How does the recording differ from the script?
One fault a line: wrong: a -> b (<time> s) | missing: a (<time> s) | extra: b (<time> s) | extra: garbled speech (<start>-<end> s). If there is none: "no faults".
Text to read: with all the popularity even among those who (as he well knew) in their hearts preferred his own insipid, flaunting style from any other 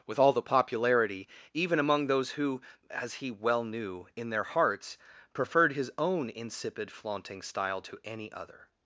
wrong: from -> to (7.8 s)